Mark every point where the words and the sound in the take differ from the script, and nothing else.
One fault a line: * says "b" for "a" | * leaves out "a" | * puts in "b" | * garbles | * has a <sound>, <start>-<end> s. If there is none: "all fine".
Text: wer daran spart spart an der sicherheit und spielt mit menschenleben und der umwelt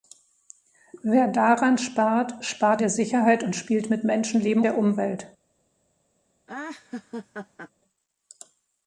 * leaves out "an"
* leaves out "und"
* has a laugh, 6.5-7.7 s